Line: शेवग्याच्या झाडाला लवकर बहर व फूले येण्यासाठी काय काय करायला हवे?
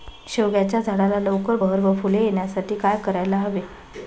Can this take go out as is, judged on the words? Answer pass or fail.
fail